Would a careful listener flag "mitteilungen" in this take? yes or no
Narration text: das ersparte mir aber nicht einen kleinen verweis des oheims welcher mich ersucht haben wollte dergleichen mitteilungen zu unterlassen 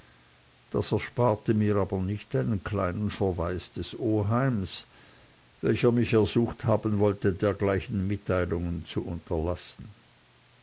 no